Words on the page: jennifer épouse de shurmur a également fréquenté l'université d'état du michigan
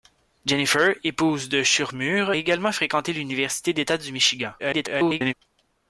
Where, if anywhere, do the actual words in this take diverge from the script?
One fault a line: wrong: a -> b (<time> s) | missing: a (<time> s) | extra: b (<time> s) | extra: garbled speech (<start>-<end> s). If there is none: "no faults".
missing: a (2.3 s)
extra: garbled speech (4.6-5.3 s)